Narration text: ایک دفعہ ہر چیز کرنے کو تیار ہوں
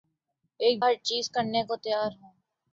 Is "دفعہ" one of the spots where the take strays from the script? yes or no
yes